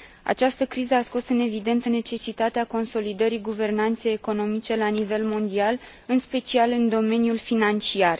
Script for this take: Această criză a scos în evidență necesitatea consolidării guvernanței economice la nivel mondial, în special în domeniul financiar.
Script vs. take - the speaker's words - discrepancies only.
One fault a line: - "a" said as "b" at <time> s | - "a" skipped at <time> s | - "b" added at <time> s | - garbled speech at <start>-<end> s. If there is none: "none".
none